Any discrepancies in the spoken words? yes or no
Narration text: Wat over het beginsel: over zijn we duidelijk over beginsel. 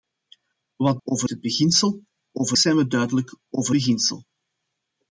no